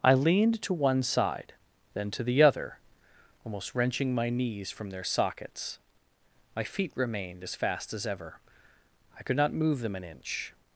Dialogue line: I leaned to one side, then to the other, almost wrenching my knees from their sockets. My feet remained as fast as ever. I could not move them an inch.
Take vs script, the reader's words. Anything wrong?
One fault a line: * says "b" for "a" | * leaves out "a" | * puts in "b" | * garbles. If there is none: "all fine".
all fine